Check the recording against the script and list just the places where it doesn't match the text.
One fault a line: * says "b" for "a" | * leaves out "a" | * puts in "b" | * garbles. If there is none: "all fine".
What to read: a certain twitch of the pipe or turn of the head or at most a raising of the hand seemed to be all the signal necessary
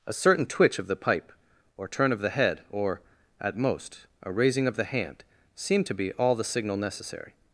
all fine